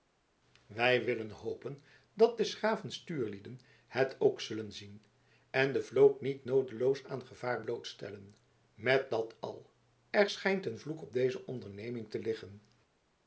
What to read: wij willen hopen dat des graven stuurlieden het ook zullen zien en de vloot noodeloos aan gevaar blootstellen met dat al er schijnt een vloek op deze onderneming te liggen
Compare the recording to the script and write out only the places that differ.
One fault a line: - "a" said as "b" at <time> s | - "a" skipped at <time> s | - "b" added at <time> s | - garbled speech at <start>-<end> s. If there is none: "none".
- "niet" added at 6.2 s